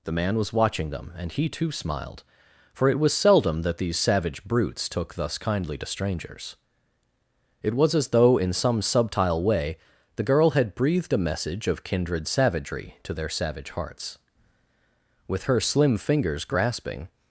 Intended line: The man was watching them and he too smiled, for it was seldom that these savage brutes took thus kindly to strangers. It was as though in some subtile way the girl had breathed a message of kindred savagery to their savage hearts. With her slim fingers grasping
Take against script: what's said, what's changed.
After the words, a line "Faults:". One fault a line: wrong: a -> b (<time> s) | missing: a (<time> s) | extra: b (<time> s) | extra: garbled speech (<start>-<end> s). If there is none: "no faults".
The man was watching them and he too smiled, for it was seldom that these savage brutes took thus kindly to strangers. It was as though in some subtile way the girl had breathed a message of kindred savagery to their savage hearts. With her slim fingers grasping
Faults:
no faults